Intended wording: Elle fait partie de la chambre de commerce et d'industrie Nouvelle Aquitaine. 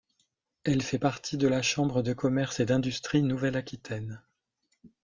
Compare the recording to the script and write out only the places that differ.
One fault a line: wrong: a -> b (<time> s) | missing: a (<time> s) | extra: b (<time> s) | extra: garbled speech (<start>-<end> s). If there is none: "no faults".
no faults